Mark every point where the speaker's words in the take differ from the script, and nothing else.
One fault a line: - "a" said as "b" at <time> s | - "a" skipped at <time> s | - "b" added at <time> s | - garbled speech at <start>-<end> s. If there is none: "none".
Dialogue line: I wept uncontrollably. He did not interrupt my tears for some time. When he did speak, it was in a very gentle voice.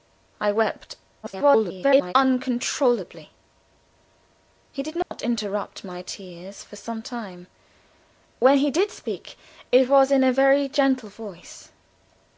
- garbled speech at 1.2-2.1 s